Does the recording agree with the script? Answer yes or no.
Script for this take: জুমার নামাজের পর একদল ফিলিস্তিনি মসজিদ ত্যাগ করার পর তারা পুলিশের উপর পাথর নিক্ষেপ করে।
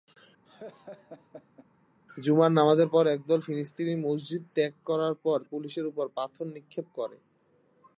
no